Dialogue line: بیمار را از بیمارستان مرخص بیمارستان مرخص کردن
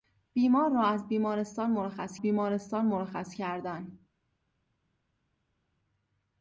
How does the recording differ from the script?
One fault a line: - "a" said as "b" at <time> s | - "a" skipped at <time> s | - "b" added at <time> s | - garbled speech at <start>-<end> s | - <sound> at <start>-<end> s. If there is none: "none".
none